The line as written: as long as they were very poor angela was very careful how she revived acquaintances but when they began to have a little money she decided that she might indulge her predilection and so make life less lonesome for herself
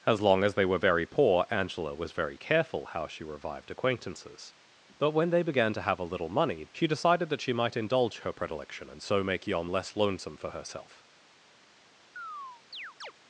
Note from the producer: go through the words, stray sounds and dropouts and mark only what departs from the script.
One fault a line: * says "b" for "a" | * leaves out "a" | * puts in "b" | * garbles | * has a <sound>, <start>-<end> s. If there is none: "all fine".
* says "yom" for "life"
* has a chirp, 12.2-13.1 s